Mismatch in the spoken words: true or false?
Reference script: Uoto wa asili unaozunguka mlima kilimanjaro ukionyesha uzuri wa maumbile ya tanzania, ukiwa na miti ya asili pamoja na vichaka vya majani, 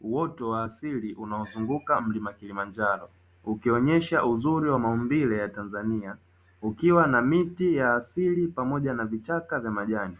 false